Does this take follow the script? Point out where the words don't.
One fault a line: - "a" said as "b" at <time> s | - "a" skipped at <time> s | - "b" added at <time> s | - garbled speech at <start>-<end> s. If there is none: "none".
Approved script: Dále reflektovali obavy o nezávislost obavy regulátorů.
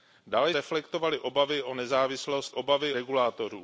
none